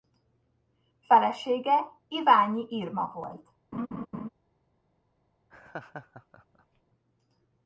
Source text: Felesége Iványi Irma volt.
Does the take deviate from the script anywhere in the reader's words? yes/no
no